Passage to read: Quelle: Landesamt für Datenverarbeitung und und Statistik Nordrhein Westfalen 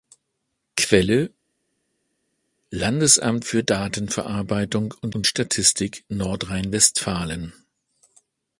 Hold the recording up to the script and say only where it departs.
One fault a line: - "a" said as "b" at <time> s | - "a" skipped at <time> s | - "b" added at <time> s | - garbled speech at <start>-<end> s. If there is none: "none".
none